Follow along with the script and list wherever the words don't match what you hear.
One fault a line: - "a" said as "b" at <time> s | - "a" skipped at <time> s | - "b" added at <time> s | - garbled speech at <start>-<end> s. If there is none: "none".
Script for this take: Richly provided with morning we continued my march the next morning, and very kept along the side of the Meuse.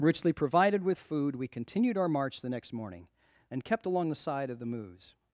- "morning" said as "food" at 1.0 s
- "my" said as "our" at 2.0 s
- "very" skipped at 3.6 s